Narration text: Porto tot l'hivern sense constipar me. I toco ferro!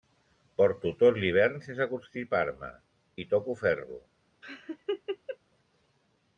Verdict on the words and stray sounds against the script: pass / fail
fail